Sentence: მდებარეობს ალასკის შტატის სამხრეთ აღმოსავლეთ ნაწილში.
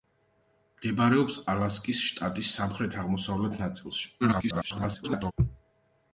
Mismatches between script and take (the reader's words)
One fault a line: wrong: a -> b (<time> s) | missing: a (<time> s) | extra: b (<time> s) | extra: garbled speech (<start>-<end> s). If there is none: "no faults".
extra: garbled speech (4.2-5.3 s)